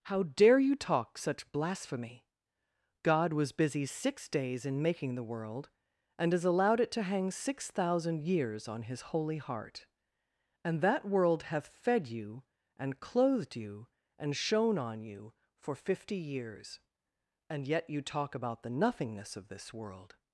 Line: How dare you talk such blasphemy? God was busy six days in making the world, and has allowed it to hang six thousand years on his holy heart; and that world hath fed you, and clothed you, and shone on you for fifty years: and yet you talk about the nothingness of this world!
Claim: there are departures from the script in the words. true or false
false